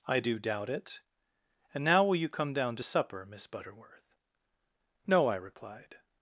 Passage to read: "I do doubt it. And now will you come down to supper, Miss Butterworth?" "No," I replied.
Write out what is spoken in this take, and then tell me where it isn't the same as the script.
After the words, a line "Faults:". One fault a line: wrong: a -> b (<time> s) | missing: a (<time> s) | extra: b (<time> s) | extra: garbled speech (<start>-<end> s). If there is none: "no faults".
"I do doubt it. And now will you come down to supper, Miss Butterworth?" "No," I replied.
Faults:
no faults